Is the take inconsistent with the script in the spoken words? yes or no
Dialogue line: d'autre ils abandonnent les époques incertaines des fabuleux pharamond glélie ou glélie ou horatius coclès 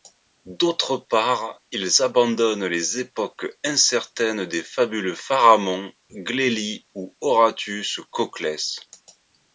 yes